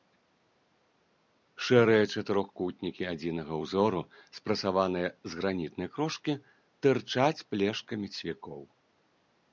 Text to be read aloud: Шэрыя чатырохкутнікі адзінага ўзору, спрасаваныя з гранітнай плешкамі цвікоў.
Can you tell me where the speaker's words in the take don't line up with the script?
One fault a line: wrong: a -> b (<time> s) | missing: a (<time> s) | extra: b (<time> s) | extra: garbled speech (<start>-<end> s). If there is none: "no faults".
extra: крошкі тырчаць (6.0 s)